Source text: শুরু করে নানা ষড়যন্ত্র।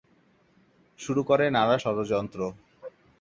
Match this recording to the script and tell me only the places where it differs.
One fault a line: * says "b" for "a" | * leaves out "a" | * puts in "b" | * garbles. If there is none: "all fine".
all fine